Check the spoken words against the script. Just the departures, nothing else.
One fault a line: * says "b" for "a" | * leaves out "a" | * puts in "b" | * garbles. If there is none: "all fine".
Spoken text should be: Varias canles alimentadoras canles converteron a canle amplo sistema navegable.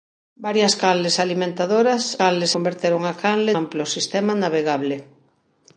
all fine